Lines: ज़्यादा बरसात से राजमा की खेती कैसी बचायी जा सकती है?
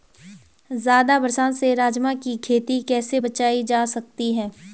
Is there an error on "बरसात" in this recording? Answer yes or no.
no